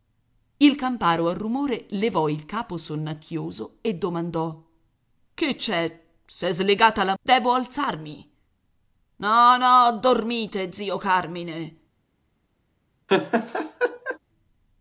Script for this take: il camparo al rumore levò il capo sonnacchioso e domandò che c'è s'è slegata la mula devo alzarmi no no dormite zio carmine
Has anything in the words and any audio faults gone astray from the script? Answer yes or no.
yes